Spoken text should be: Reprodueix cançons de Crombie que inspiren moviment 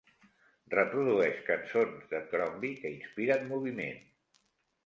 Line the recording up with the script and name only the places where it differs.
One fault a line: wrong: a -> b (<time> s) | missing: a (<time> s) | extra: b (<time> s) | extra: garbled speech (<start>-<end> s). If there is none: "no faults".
no faults